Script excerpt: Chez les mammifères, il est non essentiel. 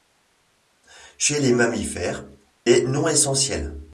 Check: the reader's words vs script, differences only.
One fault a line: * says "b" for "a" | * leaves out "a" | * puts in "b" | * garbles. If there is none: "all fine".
* leaves out "il"